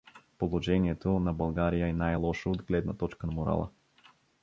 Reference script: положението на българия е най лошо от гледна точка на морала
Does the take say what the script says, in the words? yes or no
yes